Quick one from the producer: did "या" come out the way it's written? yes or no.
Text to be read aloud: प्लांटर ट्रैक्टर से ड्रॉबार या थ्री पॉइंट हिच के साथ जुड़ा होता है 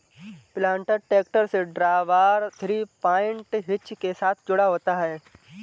no